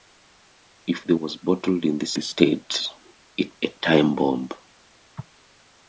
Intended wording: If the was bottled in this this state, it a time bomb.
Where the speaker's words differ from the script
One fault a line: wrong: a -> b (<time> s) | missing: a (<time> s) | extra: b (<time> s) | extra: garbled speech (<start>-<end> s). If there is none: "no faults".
no faults